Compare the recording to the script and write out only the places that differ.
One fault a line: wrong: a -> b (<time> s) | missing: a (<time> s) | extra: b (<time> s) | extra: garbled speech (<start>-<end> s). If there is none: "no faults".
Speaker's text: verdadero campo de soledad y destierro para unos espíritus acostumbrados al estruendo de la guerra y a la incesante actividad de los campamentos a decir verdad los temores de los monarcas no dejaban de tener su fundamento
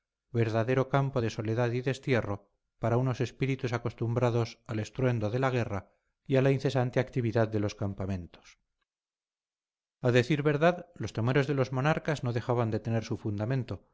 no faults